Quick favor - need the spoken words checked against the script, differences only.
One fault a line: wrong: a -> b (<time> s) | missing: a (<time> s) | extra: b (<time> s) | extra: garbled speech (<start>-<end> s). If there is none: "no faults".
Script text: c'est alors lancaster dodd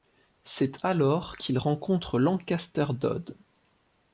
extra: qu'il rencontre (1.4 s)